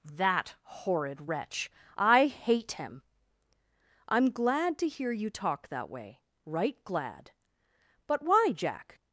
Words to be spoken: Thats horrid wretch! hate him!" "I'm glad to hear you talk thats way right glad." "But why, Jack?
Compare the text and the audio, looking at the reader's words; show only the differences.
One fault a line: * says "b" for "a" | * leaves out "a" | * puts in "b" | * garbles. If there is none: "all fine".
* says "That" for "Thats"
* puts in "I"
* says "that" for "thats"